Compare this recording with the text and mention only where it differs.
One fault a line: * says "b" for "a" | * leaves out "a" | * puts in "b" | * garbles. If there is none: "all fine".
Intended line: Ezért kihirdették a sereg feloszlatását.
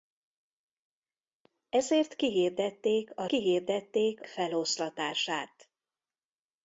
* says "kihirdették" for "sereg"